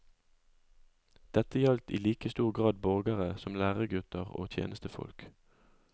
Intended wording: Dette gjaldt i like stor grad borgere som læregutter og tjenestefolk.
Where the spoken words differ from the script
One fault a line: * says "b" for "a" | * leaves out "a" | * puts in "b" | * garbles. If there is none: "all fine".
all fine